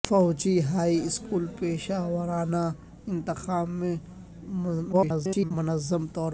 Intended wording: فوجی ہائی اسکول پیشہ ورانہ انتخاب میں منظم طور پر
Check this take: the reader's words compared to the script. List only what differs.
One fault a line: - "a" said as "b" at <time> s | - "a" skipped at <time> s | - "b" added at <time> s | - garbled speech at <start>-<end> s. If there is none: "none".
- garbled speech at 4.9-5.5 s